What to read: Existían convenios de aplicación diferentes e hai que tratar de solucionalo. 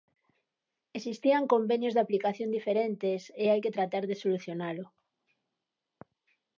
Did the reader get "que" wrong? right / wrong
right